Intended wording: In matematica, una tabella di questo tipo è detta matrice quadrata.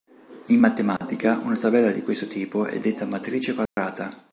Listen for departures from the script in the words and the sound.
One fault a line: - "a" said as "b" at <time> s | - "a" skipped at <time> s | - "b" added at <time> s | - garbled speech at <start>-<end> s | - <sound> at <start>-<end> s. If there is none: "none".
- dropout at 1.0-1.0 s
- dropout at 3.7-3.8 s